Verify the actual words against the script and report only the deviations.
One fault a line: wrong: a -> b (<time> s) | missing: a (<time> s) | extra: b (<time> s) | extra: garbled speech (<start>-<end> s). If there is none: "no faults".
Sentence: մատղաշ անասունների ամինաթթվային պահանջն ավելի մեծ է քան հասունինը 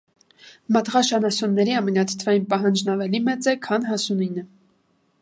no faults